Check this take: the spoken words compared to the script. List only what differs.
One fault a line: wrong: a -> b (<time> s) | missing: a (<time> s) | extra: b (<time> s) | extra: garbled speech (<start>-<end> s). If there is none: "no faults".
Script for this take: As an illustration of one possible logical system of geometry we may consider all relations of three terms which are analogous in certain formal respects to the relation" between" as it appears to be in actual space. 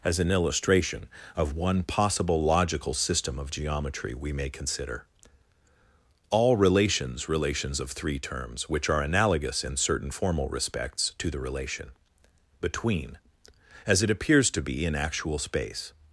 extra: relations (7.3 s)